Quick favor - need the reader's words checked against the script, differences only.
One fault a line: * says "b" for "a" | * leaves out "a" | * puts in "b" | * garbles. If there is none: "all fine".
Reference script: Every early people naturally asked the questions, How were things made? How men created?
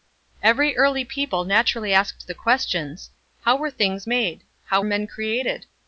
all fine